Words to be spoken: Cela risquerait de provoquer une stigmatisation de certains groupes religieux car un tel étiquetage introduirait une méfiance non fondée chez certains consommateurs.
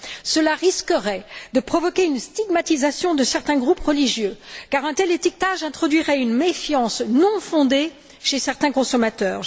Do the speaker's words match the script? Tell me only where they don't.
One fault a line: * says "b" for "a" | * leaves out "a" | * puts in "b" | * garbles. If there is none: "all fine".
all fine